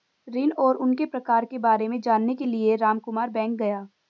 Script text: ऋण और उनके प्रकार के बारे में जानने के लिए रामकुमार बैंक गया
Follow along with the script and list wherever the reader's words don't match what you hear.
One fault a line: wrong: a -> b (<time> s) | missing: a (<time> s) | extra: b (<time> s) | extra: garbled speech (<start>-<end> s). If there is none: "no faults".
no faults